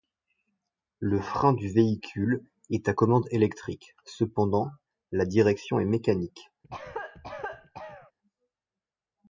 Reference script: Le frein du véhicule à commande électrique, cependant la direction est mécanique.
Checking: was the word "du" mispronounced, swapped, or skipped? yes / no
no